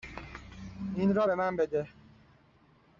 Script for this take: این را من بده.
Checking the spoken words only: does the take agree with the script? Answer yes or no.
no